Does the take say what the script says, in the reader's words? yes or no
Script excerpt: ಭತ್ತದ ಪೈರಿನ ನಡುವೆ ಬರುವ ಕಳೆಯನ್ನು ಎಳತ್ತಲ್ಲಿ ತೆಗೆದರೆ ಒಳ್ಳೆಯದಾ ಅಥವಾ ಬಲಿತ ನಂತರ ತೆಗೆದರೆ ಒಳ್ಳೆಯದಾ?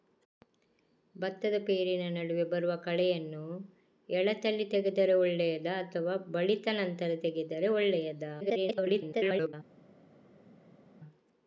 no